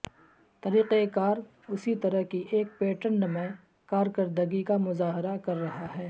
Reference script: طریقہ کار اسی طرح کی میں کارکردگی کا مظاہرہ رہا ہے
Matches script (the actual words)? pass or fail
fail